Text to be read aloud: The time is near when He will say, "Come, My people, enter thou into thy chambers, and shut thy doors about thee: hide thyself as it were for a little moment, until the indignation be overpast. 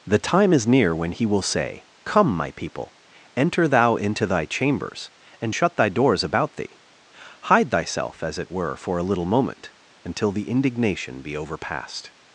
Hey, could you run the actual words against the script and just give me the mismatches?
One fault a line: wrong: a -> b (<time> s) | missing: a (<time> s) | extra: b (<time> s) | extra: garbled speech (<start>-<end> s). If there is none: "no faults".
no faults